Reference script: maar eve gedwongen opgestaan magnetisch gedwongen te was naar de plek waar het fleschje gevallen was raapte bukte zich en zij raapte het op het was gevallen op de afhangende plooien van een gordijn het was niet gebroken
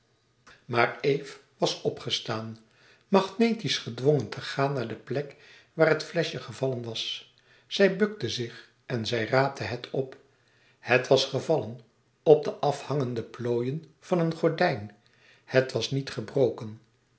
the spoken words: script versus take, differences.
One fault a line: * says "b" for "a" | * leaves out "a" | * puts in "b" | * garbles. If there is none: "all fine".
* says "was" for "gedwongen"
* says "gaan" for "was"
* says "zij" for "raapte"